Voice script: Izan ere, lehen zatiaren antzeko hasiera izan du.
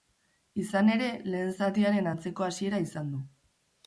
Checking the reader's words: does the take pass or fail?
pass